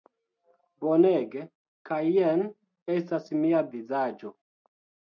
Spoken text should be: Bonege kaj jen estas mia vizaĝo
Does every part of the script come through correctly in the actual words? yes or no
yes